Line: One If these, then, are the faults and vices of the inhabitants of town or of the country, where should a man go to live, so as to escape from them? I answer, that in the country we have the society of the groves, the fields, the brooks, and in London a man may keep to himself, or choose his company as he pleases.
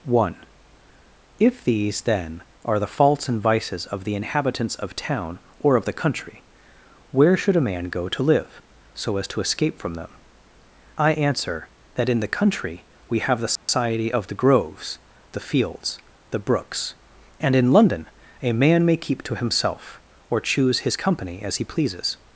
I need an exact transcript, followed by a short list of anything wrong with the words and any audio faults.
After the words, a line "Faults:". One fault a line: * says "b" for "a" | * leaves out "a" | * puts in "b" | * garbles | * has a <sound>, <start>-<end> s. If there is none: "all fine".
One If these, then, are the faults and vices of the inhabitants of town or of the country, where should a man go to live, so as to escape from them? I answer, that in the country we have the society of the groves, the fields, the brooks, and in London a man may keep to himself, or choose his company as he pleases.
Faults:
* has a dropout, 13.6-13.7 s